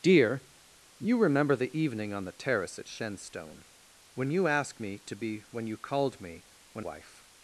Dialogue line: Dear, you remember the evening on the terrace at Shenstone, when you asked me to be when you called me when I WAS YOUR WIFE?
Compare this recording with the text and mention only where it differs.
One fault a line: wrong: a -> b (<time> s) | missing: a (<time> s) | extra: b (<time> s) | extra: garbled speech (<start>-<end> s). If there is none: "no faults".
missing: I WAS YOUR (6.8 s)